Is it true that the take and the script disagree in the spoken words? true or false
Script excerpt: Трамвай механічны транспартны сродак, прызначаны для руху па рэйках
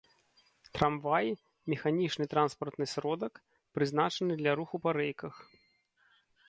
false